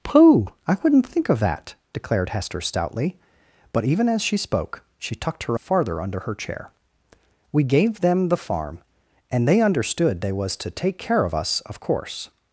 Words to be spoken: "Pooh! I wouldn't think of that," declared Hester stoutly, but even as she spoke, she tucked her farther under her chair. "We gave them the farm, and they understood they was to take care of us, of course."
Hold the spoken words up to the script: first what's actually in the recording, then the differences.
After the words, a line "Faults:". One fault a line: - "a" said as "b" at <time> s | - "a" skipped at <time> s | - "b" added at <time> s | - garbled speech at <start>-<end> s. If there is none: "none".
"Pooh! I wouldn't think of that," declared Hester stoutly, but even as she spoke, she tucked her farther under her chair. "We gave them the farm, and they understood they was to take care of us, of course."
Faults:
none